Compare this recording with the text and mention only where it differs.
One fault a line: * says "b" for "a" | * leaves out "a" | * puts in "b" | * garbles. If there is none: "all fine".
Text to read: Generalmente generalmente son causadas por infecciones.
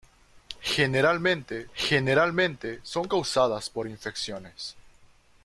all fine